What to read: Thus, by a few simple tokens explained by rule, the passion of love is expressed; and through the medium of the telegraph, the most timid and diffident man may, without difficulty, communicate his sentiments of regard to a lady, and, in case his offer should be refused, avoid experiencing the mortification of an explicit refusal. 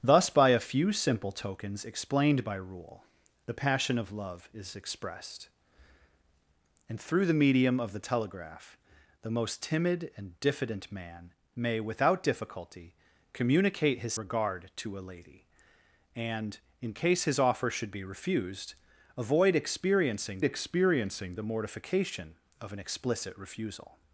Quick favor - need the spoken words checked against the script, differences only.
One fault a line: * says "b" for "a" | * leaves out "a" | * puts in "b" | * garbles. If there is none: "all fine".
* leaves out "sentiments of"
* puts in "experiencing"